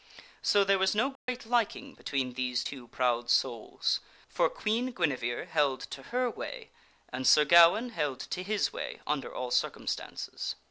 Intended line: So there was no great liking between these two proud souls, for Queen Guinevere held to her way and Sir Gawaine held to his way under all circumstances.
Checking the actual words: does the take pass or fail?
pass